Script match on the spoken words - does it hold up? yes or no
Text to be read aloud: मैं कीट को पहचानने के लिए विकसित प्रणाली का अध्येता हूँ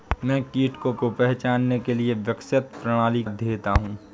no